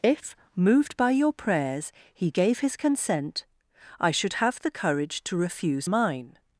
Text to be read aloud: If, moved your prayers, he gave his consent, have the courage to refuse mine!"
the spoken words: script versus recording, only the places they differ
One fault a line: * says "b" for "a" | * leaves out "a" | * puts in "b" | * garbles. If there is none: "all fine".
* puts in "by"
* puts in "I should"